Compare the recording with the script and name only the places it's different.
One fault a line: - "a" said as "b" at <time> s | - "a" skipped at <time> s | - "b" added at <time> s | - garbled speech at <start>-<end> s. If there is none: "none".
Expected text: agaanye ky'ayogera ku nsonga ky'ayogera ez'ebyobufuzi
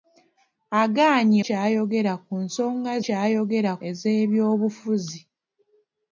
none